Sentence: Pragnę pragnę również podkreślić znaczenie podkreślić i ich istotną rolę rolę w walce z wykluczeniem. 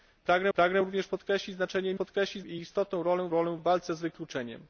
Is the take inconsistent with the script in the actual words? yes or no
no